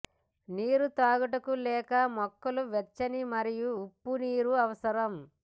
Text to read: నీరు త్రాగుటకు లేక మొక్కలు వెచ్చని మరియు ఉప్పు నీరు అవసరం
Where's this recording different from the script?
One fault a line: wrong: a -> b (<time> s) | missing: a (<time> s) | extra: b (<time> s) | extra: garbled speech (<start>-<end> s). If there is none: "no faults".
no faults